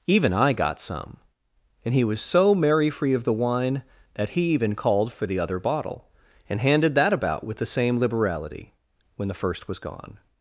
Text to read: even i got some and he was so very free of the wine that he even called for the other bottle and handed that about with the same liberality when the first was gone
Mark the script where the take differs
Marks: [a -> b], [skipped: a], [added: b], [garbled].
even i got some and he was so [very -> merry] free of the wine that he even called for the other bottle and handed that about with the same liberality when the first was gone